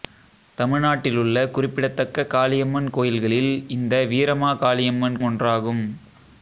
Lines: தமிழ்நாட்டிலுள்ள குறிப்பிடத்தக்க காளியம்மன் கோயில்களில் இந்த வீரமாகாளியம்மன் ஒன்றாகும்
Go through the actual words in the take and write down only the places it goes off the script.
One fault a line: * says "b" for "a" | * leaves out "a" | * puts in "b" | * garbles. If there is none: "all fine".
all fine